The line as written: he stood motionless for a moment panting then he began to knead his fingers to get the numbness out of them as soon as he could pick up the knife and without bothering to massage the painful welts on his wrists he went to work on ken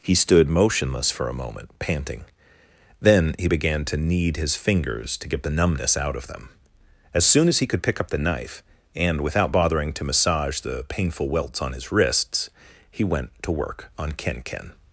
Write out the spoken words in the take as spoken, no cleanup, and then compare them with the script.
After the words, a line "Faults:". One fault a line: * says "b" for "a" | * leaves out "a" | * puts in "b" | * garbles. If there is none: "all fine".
he stood motionless for a moment panting then he began to knead his fingers to get the numbness out of them as soon as he could pick up the knife and without bothering to massage the painful welts on his wrists he went to work on ken ken
Faults:
* puts in "ken"